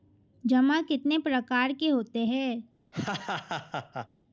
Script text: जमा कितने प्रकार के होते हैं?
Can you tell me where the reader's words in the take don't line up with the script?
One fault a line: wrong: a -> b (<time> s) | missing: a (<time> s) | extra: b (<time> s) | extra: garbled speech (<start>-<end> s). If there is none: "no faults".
no faults